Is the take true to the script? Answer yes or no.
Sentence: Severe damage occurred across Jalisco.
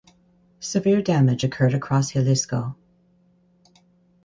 yes